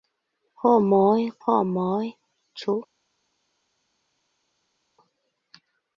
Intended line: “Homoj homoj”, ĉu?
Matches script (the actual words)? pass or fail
pass